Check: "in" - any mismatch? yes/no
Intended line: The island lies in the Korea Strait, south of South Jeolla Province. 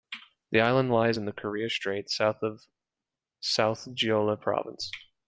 no